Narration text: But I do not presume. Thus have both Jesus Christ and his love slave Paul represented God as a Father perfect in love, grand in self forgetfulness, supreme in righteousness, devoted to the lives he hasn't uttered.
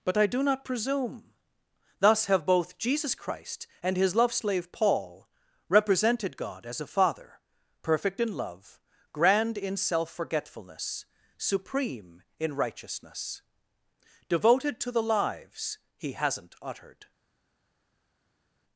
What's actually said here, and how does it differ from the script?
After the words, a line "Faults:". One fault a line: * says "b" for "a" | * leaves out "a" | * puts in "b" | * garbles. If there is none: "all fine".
But I do not presume. Thus have both Jesus Christ and his love slave Paul represented God as a Father perfect in love, grand in self forgetfulness, supreme in righteousness, devoted to the lives he hasn't uttered.
Faults:
all fine